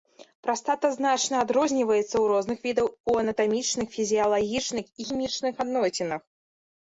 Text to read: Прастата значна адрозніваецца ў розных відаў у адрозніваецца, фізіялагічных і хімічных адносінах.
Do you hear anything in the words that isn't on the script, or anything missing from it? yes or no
yes